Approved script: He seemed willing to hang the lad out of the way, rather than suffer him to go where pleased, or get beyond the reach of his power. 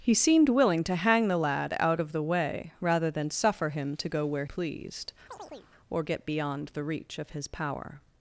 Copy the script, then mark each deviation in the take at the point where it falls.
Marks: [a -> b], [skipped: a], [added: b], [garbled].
He seemed willing to hang the lad out of the way, rather than suffer him to go where pleased, or get beyond the reach of his power.